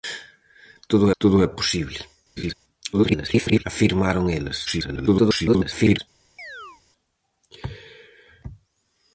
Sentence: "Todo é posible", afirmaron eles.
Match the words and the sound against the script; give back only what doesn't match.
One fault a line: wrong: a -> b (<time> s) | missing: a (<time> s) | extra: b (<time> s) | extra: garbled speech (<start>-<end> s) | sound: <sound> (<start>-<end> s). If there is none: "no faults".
extra: todo (1.2 s)
sound: laugh (2.4-2.5 s)
extra: garbled speech (2.9-3.6 s)
extra: garbled speech (4.7-6.0 s)
sound: chirp (6.4-6.8 s)